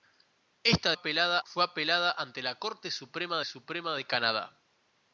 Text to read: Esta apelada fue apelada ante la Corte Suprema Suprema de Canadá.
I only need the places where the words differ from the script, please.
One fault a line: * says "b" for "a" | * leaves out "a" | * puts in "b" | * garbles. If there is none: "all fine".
all fine